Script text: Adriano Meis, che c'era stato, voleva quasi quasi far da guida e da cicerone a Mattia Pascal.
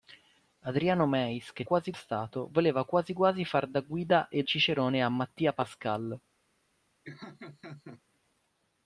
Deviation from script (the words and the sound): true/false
true